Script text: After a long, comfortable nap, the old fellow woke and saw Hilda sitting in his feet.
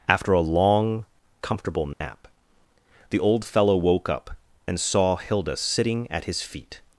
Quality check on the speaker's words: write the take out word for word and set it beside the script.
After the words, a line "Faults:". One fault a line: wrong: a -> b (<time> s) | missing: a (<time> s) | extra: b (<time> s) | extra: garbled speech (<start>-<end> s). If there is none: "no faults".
After a long, comfortable nap, the old fellow woke up, and saw Hilda sitting at his feet.
Faults:
extra: up (4.1 s)
wrong: in -> at (6.1 s)